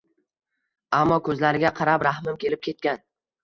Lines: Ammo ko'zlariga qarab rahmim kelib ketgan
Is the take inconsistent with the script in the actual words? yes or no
no